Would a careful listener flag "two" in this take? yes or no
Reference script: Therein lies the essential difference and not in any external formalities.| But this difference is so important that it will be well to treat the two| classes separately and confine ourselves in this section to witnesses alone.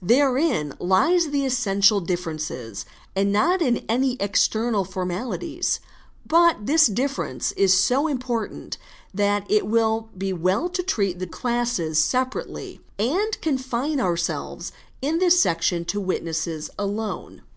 yes